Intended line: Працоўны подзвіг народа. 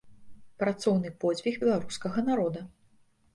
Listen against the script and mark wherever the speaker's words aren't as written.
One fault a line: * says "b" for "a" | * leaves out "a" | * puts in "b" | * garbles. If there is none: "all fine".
* puts in "беларускага"